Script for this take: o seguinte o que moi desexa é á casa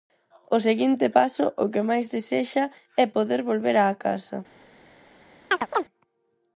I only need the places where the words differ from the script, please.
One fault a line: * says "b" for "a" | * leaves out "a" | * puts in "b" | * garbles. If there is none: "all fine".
* puts in "paso"
* says "máis" for "moi"
* puts in "poder volver"